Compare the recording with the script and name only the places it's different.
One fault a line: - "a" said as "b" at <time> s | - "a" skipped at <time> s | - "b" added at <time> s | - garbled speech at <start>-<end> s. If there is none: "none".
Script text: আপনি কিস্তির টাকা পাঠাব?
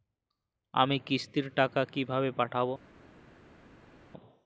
- "আপনি" said as "আমি" at 0.7 s
- "কিভাবে" added at 1.9 s